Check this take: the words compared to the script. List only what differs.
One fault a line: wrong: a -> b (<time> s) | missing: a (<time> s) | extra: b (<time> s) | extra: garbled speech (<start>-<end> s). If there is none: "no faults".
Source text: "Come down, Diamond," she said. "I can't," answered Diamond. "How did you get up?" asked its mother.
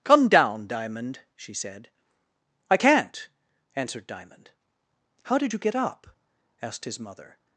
wrong: its -> his (6.9 s)